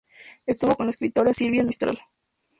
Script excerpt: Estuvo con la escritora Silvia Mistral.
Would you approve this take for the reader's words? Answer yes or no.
yes